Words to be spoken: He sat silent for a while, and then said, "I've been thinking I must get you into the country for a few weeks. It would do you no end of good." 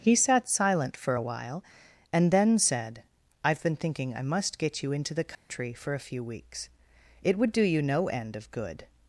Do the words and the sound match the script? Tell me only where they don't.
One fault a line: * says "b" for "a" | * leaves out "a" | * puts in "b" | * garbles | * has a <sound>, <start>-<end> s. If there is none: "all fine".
* has a dropout, 5.3-5.5 s